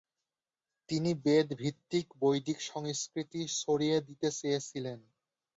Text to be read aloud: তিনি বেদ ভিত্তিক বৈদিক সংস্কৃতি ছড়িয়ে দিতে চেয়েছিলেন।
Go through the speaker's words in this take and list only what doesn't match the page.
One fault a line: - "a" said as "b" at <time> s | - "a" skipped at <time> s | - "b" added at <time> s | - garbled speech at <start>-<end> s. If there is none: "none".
none